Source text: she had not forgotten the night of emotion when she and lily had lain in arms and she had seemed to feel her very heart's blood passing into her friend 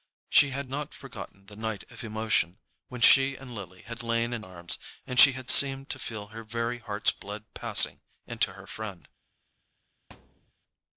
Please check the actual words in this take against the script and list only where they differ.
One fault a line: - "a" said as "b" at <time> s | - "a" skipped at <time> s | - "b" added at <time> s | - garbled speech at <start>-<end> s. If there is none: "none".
none